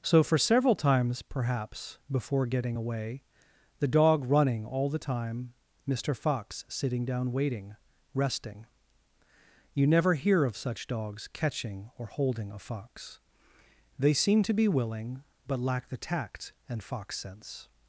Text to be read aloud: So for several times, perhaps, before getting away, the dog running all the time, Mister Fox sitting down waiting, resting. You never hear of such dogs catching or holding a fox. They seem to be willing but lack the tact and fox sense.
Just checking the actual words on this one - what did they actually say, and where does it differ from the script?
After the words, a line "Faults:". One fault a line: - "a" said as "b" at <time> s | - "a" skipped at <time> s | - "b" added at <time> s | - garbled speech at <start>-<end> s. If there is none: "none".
So for several times, perhaps, before getting away, the dog running all the time, Mister Fox sitting down waiting, resting. You never hear of such dogs catching or holding a fox. They seem to be willing but lack the tact and fox sense.
Faults:
none